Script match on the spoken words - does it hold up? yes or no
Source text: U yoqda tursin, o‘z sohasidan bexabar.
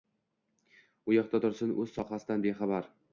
yes